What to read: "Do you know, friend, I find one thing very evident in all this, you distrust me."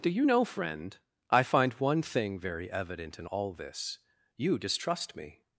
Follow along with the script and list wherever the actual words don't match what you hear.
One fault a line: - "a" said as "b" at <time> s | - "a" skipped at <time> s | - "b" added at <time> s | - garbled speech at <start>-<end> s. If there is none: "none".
none